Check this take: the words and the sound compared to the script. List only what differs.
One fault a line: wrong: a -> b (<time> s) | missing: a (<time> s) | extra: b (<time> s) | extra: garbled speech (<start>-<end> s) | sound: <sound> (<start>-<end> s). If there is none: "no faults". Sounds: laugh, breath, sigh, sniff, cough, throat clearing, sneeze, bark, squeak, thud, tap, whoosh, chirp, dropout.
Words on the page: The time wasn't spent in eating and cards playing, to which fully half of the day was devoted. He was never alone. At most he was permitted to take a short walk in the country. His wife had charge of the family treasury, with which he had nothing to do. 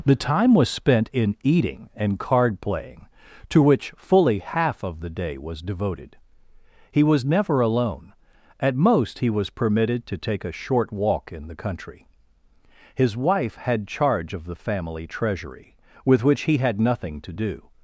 wrong: wasn't -> was (0.6 s)
wrong: cards -> card (2.2 s)